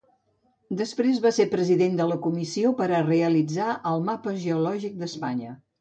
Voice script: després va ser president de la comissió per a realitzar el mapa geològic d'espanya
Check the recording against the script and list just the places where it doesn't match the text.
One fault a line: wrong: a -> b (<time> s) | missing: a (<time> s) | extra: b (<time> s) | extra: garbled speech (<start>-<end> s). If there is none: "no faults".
no faults